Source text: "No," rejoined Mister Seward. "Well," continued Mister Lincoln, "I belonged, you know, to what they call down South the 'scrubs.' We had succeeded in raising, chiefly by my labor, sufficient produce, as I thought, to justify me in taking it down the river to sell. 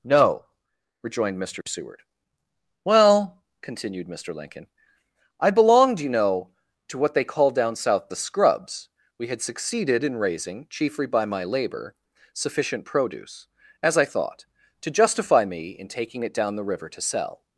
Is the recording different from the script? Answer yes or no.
no